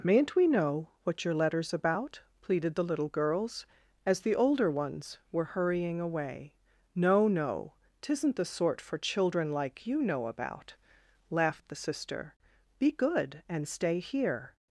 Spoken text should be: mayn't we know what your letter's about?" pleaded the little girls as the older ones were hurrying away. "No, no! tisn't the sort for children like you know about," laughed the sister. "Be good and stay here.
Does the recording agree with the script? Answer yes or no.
yes